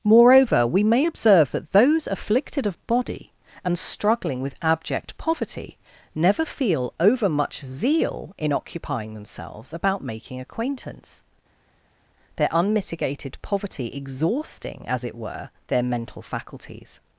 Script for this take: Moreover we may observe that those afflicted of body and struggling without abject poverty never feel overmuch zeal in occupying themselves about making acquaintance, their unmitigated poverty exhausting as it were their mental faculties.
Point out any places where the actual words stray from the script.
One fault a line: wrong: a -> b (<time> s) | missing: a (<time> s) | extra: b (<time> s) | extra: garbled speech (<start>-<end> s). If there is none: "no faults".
wrong: without -> with (4.4 s)